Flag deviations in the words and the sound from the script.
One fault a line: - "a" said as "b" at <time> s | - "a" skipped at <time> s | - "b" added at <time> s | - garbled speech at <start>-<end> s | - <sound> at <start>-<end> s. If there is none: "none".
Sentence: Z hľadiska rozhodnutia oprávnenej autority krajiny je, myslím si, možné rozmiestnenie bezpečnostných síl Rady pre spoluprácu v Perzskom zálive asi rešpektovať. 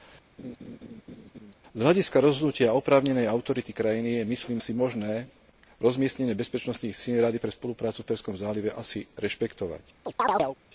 - laugh at 0.4-1.5 s
- chirp at 10.1-10.6 s